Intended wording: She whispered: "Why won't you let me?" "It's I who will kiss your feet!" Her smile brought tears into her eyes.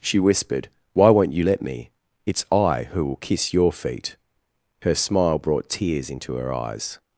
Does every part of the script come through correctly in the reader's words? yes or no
yes